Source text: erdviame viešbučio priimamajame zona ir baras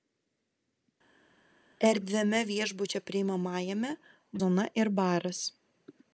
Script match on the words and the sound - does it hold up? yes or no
yes